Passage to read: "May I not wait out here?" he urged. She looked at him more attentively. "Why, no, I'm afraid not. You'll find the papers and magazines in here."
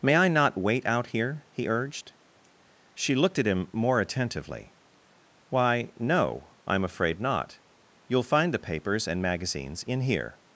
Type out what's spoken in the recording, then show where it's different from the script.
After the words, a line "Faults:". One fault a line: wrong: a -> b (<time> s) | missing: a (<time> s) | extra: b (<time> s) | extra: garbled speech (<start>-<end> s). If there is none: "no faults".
"May I not wait out here?" he urged. She looked at him more attentively. "Why, no, I'm afraid not. You'll find the papers and magazines in here."
Faults:
no faults